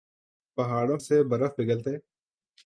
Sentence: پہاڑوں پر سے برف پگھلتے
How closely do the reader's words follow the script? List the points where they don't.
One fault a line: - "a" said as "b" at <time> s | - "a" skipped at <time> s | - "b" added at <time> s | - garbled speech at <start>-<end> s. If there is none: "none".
- "پر" skipped at 1.0 s